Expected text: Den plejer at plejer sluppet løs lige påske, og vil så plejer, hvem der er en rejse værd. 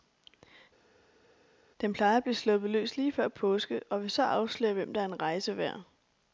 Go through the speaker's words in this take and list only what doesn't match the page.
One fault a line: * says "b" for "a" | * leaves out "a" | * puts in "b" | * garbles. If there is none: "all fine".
* says "blive" for "plejer"
* puts in "før"
* says "afsløre" for "plejer"